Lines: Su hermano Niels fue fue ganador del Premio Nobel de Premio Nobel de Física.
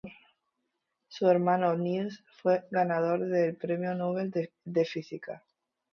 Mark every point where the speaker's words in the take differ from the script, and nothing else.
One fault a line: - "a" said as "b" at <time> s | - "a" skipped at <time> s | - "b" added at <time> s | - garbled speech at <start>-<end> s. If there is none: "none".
- "fue" skipped at 2.6 s
- "Premio Nobel de" skipped at 4.8 s